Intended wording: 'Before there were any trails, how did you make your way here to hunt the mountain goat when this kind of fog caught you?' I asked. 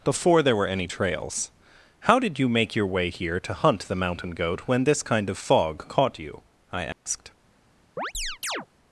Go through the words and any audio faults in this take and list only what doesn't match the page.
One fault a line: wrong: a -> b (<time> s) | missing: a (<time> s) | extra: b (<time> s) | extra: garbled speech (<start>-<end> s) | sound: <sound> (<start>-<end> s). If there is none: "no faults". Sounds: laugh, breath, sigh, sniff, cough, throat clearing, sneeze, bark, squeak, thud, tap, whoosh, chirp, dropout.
sound: dropout (6.9-7.1 s)
sound: chirp (8.0-8.7 s)